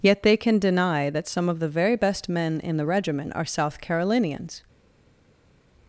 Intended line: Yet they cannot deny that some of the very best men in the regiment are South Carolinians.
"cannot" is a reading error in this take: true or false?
true